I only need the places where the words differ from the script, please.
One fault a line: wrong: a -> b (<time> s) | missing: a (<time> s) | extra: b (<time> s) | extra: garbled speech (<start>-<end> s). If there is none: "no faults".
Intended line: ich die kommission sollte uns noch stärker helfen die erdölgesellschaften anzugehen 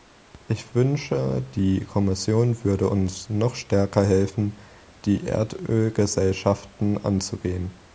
extra: wünsche (0.7 s)
wrong: sollte -> würde (2.6 s)